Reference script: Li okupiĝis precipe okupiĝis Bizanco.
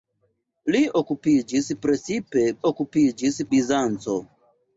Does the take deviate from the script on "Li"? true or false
false